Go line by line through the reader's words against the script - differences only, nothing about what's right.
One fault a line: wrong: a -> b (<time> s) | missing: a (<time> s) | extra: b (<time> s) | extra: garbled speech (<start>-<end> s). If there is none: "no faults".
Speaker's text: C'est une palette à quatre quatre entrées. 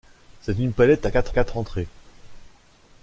no faults